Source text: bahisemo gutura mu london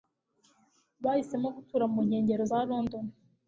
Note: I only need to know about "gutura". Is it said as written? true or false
true